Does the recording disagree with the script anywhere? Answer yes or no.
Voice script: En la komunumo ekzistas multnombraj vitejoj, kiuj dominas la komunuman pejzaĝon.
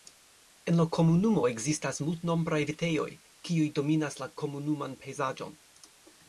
no